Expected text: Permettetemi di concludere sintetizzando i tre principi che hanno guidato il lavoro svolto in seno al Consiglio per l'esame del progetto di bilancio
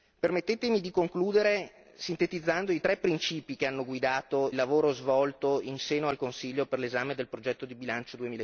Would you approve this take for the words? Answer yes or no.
no